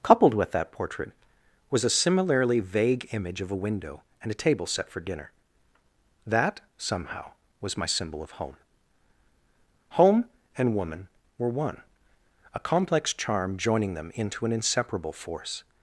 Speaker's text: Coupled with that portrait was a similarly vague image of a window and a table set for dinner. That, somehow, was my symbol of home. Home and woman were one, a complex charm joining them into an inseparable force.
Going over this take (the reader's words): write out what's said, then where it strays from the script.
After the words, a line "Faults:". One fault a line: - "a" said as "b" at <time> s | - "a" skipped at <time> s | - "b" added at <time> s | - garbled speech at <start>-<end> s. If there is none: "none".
Coupled with that portrait was a similarly vague image of a window and a table set for dinner. That, somehow, was my symbol of home. Home and woman were one, a complex charm joining them into an inseparable force.
Faults:
none